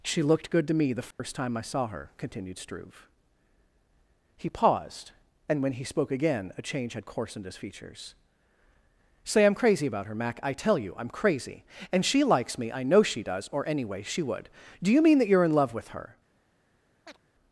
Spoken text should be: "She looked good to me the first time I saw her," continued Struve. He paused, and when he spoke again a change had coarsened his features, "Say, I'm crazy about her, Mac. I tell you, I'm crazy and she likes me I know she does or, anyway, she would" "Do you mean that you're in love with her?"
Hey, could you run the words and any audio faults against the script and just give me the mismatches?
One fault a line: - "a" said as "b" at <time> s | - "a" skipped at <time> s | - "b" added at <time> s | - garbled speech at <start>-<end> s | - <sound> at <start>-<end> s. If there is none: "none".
- dropout at 1.1-1.2 s
- chirp at 17.1-17.2 s